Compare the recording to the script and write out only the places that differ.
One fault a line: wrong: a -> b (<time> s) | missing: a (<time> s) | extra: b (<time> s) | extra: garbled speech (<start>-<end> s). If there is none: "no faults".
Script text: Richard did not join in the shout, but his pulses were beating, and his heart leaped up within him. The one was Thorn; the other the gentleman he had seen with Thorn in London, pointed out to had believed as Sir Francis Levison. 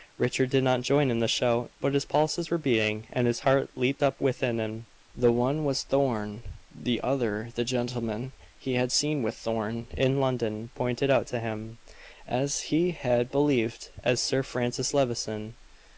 extra: him as he (11.4 s)